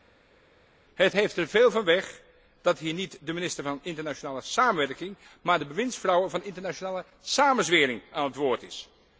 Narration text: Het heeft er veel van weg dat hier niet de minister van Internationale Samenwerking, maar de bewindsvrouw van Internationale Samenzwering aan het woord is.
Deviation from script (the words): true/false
false